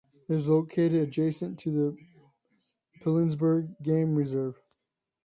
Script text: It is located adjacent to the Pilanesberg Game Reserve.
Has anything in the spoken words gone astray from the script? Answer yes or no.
no